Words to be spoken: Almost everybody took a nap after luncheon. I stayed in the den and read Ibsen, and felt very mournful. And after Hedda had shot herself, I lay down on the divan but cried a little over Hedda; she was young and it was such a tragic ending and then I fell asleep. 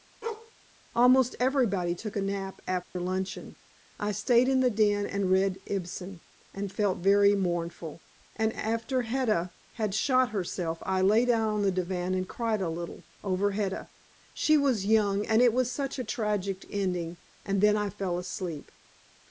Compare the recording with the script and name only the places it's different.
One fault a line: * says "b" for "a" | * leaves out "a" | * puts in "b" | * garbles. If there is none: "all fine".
* says "and" for "but"